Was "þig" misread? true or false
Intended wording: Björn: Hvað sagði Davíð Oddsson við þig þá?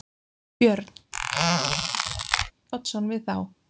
true